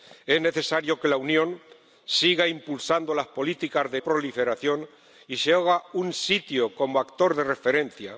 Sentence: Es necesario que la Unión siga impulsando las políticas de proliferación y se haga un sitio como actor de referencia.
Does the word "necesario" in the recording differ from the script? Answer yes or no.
no